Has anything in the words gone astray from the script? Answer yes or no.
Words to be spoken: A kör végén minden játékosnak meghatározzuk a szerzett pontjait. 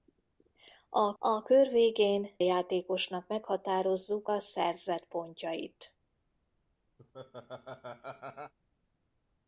yes